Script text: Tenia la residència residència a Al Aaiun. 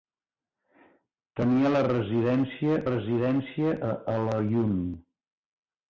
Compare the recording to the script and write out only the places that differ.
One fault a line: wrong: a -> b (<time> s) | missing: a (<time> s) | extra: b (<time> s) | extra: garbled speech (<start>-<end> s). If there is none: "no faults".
no faults